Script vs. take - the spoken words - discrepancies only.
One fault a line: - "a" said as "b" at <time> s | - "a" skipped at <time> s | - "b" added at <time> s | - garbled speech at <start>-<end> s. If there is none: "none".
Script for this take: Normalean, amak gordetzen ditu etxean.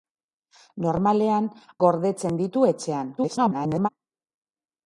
- "amak" skipped at 1.5 s
- garbled speech at 3.2-3.9 s